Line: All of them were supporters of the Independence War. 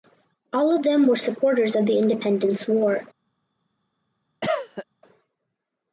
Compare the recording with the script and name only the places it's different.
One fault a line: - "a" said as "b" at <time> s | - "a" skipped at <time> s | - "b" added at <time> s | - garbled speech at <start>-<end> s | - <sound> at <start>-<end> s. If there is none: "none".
- cough at 4.4-4.8 s